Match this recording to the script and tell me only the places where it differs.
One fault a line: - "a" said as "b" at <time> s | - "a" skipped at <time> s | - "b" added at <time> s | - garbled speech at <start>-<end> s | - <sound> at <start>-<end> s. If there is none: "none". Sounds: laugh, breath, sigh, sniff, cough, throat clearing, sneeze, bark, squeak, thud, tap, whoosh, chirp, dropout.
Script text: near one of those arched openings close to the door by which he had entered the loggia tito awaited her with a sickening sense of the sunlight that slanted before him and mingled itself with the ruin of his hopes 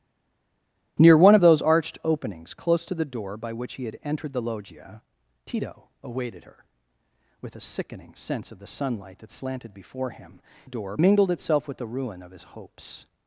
- "and" said as "door" at 10.6 s